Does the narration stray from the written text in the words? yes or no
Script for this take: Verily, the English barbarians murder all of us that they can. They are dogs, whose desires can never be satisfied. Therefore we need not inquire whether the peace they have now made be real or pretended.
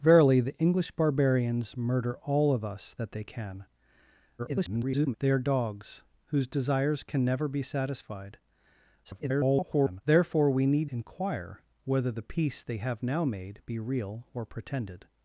yes